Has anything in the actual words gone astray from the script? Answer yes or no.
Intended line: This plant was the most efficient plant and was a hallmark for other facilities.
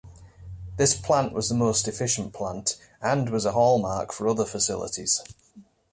no